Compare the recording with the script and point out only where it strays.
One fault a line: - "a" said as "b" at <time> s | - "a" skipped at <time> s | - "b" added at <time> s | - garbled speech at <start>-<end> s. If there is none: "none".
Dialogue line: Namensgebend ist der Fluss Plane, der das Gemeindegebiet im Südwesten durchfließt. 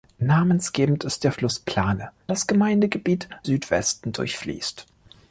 - "der" skipped at 2.1 s
- "im" skipped at 3.3 s